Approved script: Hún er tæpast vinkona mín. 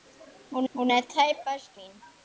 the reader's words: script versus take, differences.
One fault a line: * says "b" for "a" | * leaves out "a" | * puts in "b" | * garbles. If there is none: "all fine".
* puts in "hún"
* leaves out "vinkona"